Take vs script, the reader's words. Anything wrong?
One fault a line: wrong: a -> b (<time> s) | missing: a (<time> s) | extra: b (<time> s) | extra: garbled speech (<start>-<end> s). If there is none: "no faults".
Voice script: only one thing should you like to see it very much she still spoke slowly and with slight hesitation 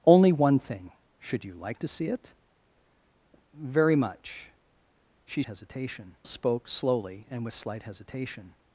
wrong: still -> hesitation (5.5 s)